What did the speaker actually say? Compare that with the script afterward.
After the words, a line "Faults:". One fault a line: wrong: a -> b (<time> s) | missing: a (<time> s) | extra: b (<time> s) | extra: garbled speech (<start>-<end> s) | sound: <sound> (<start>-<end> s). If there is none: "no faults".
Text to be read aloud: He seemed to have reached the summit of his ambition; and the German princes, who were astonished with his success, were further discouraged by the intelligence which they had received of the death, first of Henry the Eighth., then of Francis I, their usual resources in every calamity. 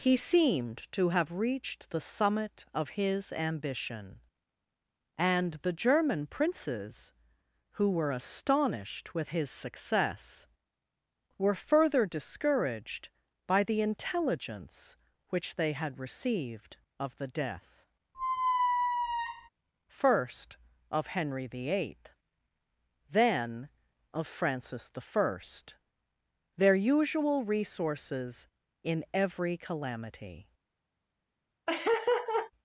He seemed to have reached the summit of his ambition; and the German princes, who were astonished with his success, were further discouraged by the intelligence which they had received of the death, first of Henry the Eighth., then of Francis I, their usual resources in every calamity.
Faults:
sound: squeak (18.1-19.5 s)
sound: laugh (31.7-32.5 s)